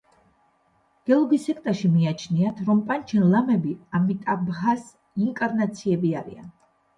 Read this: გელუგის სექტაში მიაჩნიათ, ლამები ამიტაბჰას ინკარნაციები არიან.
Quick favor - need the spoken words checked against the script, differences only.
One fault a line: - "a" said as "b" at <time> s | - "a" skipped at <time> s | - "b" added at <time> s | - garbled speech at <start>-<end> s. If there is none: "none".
- "რომ პანჩენ" added at 2.7 s